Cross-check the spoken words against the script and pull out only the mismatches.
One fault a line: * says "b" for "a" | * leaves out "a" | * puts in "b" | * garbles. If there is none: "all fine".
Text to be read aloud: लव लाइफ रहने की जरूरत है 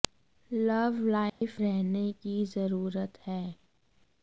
all fine